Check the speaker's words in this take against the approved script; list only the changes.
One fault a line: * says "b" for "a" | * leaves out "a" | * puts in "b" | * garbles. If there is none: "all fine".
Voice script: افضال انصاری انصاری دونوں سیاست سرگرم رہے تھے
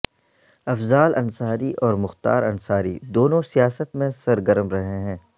* puts in "اور مختار"
* puts in "میں"
* says "ہیں" for "تھے"